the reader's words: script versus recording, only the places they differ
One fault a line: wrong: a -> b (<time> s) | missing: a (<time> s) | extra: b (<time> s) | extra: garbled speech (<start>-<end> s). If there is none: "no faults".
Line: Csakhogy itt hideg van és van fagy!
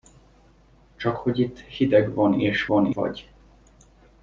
no faults